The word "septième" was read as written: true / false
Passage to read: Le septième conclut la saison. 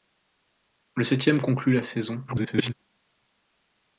true